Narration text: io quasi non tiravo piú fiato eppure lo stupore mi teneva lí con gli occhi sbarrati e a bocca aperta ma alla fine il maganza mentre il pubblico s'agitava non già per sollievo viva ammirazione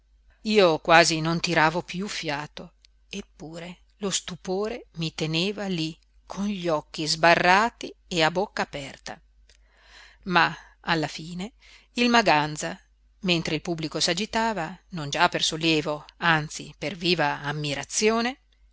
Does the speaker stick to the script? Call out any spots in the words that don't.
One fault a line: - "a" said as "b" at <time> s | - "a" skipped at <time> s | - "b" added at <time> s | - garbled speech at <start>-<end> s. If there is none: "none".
- "anzi per" added at 16.2 s